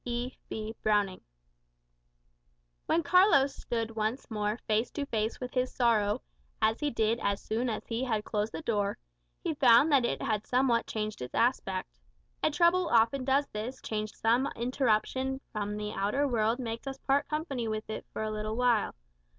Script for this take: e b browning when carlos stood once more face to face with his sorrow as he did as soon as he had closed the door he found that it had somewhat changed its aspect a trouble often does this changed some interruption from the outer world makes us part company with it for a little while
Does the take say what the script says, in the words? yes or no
yes